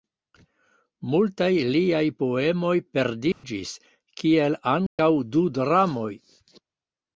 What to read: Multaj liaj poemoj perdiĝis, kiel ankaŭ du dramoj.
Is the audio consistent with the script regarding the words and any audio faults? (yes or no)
no